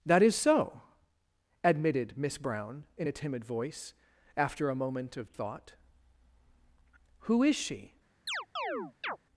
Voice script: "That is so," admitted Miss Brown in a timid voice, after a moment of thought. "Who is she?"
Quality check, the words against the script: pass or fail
pass